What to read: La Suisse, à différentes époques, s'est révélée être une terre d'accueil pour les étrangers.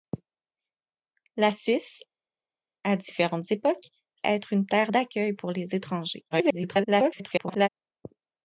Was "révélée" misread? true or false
true